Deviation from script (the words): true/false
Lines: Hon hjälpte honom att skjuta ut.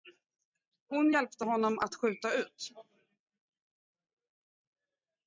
false